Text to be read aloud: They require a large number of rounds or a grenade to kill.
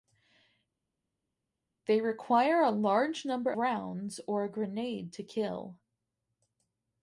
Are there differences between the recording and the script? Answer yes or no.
yes